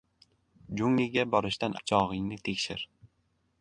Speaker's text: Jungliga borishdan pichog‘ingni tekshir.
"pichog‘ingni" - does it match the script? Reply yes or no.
yes